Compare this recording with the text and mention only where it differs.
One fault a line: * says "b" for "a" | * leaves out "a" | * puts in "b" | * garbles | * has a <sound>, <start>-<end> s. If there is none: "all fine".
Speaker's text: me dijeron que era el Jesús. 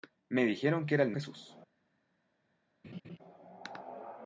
* has a laugh, 2.8-3.2 s